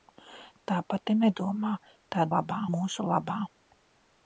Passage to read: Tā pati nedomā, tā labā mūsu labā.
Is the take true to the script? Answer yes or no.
yes